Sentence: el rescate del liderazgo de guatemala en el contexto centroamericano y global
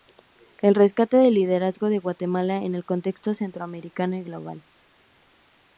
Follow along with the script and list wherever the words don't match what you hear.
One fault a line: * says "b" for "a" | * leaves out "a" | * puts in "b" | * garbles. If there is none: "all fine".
all fine